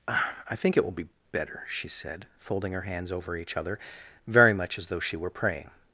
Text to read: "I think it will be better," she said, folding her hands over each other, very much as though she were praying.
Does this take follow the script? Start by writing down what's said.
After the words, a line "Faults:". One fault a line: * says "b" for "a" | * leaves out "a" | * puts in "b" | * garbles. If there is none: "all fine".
"I think it will be better," she said, folding her hands over each other, very much as though she were praying.
Faults:
all fine